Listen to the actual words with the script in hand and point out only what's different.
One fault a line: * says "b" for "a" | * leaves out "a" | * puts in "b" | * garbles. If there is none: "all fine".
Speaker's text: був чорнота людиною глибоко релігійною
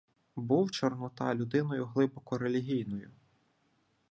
all fine